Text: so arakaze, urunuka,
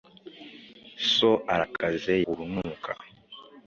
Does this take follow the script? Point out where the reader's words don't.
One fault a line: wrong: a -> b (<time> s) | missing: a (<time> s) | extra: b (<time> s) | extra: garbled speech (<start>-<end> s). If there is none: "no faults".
no faults